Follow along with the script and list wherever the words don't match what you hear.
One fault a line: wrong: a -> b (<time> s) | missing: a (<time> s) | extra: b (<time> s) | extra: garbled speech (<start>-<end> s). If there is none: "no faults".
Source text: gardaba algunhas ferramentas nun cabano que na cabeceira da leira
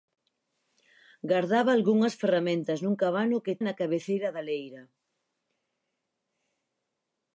no faults